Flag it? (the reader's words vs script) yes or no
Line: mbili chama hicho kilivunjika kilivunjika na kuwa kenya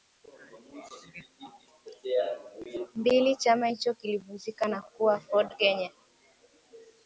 yes